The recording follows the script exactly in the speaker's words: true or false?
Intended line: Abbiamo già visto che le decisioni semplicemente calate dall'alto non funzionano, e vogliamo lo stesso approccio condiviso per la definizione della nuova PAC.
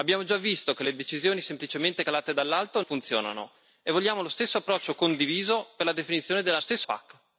false